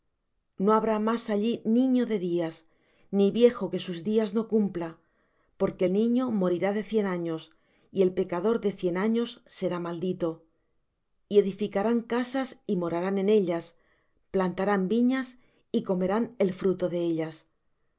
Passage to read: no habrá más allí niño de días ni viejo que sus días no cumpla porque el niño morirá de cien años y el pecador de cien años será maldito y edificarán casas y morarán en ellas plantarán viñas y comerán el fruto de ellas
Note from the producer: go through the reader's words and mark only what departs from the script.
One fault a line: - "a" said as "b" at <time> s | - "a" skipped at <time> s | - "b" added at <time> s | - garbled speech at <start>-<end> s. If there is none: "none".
none